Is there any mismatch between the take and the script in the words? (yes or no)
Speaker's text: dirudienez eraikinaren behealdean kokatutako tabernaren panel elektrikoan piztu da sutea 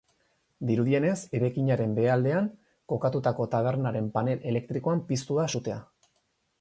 no